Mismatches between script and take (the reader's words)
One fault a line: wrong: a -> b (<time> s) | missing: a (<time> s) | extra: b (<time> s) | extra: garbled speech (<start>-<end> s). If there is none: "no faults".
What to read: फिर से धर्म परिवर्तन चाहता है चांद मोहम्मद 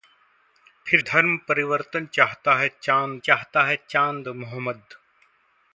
missing: से (1.0 s)
extra: चाहता है चांद (3.2 s)